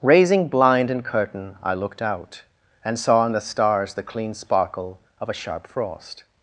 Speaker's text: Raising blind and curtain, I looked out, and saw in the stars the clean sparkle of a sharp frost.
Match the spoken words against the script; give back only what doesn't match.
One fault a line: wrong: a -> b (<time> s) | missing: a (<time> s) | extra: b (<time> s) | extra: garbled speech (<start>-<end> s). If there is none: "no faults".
no faults